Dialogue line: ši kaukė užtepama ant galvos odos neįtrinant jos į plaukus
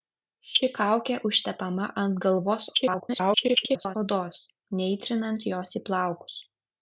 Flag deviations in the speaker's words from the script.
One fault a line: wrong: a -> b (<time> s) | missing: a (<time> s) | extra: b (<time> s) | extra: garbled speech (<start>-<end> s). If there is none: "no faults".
extra: garbled speech (2.7-4.0 s)